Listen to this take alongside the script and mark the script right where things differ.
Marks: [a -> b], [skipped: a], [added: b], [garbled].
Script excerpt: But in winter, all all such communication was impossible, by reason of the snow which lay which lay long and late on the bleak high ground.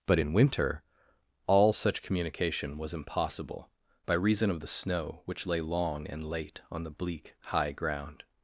But in winter, all [skipped: all] such communication was impossible, by reason of the snow which lay [skipped: which lay] long and late on the bleak high ground.